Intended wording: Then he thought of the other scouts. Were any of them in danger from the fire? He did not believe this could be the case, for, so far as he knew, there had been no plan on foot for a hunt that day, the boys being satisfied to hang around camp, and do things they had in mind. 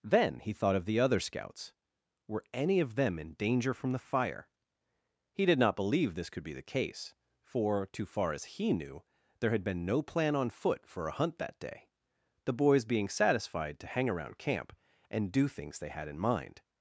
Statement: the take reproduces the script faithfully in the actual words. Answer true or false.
false